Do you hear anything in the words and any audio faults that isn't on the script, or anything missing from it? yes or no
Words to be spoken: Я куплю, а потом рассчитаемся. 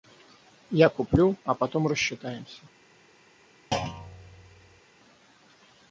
yes